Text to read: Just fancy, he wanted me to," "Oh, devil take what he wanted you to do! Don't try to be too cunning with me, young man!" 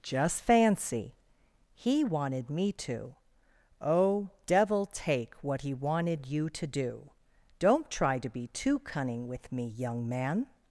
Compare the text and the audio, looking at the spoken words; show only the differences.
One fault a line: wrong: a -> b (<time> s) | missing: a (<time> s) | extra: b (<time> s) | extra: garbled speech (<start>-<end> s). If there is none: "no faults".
no faults